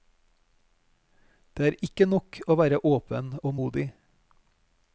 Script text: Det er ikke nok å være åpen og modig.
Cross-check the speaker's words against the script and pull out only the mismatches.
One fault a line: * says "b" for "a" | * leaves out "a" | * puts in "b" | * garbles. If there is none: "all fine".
all fine